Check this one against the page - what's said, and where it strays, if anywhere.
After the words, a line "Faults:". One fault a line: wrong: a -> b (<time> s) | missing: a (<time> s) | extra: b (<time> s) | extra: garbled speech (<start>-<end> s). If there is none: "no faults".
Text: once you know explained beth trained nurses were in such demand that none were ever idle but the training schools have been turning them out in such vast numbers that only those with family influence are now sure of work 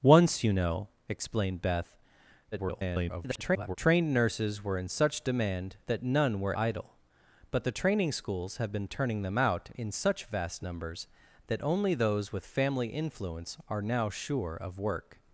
once you know explained beth [garbled] trained nurses were in such demand that none were idle but the training schools have been turning them out in such vast numbers that only those with family influence are now sure of work
Faults:
extra: garbled speech (2.5-3.8 s)
missing: ever (6.5 s)